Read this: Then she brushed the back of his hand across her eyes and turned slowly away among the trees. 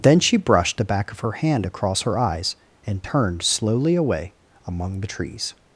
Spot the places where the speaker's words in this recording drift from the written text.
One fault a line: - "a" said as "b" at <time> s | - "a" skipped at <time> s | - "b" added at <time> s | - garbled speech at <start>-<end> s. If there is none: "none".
- "his" said as "her" at 1.2 s